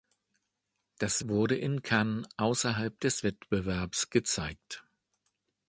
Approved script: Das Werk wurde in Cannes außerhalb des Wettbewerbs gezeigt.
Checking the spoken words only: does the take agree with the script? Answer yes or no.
no